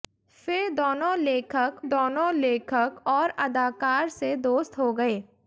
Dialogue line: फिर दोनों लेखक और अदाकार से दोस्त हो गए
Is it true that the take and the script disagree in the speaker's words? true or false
true